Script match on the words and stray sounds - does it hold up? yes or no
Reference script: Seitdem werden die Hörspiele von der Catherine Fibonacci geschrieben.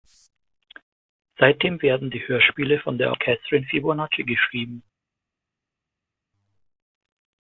yes